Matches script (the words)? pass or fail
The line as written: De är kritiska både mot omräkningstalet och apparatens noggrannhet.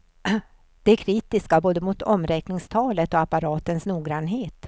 pass